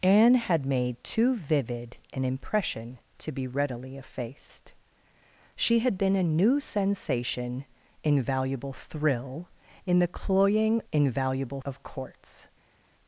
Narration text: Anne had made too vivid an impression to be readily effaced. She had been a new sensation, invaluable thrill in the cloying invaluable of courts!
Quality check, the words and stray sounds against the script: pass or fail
pass